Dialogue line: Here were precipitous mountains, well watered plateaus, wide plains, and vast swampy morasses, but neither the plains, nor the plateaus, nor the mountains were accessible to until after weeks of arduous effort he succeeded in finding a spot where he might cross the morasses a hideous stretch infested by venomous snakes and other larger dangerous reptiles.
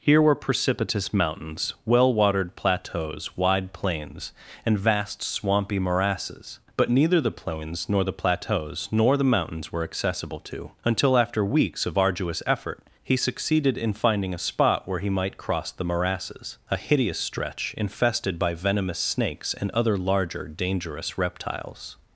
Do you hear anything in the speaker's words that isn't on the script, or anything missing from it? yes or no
no